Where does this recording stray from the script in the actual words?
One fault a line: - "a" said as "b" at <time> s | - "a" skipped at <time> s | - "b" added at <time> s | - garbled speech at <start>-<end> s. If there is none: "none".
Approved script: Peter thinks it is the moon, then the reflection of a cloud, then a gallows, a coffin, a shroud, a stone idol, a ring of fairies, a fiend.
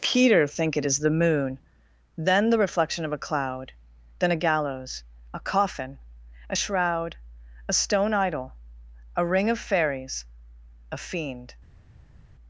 - "thinks" said as "think" at 0.5 s